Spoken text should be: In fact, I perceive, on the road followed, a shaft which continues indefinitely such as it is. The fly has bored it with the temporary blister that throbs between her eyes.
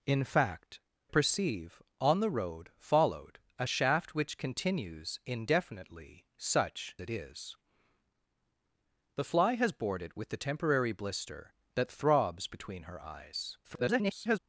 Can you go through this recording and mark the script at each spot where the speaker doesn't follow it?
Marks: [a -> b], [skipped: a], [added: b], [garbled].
In fact, [skipped: I] perceive, on the road followed, a shaft which continues indefinitely such [skipped: as] it is. The fly has bored it with the temporary blister that throbs between her eyes. [garbled]